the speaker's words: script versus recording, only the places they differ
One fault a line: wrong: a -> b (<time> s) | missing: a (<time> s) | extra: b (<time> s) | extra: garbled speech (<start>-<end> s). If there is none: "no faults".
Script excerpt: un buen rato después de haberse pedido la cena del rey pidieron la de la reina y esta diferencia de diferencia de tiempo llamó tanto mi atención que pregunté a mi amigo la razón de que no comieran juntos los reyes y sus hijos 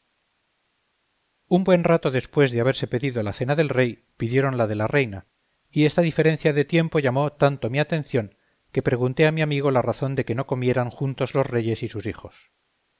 missing: diferencia de (6.7 s)